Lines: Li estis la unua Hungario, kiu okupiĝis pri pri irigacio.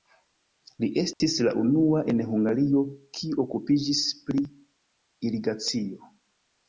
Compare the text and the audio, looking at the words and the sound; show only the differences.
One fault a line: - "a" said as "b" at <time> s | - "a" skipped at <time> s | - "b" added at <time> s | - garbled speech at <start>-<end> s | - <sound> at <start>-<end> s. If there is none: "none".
- dropout at 1.1-1.2 s
- "en" added at 2.1 s
- "pri" skipped at 4.4 s